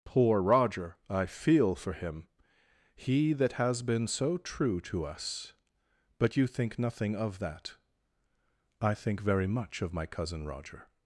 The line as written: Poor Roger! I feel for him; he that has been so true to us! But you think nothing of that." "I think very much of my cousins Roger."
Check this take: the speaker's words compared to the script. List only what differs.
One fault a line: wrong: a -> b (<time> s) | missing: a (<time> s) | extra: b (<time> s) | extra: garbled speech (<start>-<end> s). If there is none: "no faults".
wrong: cousins -> cousin (10.1 s)